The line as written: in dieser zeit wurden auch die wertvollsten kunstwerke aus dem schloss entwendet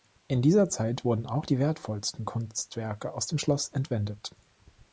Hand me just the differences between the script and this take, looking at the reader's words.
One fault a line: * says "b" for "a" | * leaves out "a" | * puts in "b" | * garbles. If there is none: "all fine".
all fine